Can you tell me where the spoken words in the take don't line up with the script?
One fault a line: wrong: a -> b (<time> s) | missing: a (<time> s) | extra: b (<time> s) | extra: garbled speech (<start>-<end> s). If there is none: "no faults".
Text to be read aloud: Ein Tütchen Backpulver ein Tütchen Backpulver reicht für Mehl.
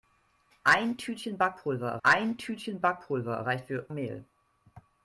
no faults